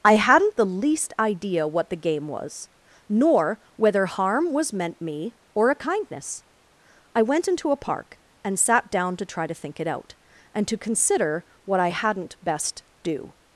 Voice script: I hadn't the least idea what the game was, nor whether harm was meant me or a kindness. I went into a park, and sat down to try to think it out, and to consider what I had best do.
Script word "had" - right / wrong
wrong